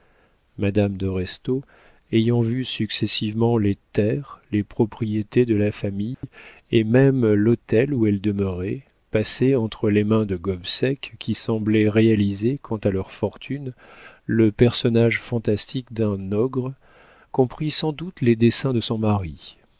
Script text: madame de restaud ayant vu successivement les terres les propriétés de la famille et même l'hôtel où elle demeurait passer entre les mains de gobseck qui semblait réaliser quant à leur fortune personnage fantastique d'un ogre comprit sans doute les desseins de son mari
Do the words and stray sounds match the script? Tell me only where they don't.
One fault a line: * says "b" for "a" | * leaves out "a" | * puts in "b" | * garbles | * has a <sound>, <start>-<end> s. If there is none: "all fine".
* has a dropout, 6.1-6.2 s
* puts in "le"